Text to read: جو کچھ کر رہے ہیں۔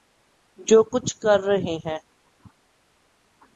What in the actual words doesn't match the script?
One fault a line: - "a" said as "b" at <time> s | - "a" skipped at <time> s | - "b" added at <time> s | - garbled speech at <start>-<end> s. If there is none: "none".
none